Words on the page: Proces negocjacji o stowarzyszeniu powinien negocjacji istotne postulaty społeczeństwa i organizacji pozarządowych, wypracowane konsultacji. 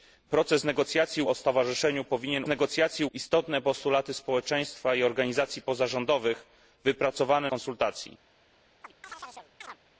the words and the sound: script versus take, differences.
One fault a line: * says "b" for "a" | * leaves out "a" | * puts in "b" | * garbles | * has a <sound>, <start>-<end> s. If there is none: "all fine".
* has a chirp, 8.8-9.8 s